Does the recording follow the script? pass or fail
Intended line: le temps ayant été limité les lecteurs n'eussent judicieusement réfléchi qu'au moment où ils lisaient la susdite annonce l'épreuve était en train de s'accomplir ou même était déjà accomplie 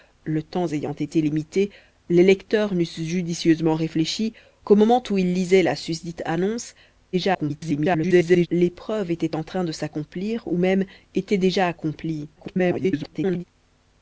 fail